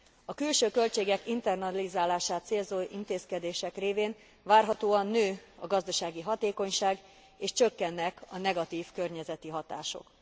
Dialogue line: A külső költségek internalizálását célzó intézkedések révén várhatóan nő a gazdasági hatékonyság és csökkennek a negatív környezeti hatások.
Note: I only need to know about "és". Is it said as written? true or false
true